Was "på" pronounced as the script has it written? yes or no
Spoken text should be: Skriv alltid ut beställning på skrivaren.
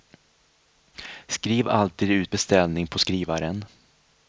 yes